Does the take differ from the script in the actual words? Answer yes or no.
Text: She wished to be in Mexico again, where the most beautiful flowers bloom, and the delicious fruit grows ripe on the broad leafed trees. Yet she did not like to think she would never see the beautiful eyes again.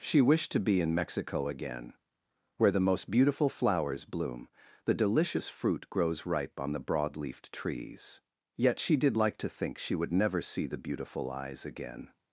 yes